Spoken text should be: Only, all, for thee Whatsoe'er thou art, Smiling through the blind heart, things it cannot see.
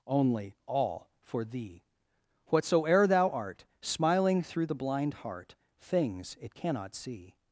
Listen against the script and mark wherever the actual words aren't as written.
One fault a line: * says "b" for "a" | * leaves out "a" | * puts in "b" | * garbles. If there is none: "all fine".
all fine